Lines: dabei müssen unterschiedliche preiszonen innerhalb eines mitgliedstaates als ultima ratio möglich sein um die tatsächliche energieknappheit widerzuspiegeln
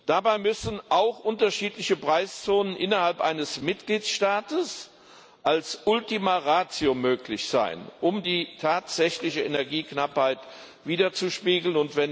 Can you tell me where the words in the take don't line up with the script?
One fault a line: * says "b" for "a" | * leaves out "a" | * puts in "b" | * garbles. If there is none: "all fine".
* puts in "auch"